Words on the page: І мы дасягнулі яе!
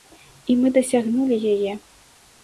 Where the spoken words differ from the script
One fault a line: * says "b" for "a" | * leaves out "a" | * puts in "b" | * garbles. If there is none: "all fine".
all fine